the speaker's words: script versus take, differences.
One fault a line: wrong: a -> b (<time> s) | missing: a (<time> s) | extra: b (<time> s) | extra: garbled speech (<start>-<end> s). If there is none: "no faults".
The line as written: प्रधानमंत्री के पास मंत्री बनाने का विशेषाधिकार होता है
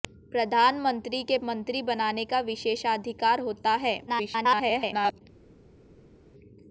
missing: पास (1.4 s)
extra: garbled speech (4.1-5.2 s)